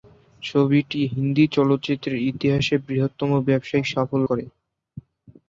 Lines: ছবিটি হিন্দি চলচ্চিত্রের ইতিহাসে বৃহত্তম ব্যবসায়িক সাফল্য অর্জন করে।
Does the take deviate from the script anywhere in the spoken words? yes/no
yes